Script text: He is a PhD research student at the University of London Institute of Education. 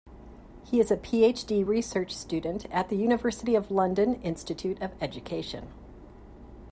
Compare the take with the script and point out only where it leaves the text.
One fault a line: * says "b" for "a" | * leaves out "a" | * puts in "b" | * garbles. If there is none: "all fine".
all fine